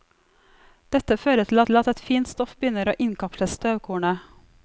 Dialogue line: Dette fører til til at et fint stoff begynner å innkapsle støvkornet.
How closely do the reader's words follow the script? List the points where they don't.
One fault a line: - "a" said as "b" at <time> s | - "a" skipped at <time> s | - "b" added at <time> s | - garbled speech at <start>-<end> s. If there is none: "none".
none